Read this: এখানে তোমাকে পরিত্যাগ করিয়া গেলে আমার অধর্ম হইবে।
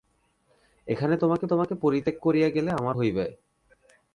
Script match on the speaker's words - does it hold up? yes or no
no